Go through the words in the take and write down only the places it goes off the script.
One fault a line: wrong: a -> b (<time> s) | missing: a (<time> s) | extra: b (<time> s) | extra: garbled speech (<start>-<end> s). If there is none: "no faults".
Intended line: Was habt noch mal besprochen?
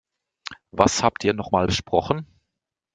extra: ihr (1.2 s)